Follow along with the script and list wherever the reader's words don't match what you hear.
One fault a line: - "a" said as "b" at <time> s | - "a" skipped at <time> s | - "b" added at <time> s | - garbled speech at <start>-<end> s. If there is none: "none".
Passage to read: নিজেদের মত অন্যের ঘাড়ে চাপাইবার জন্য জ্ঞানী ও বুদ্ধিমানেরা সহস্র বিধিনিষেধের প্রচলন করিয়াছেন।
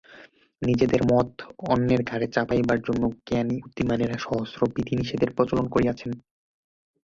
- "ও" skipped at 3.6 s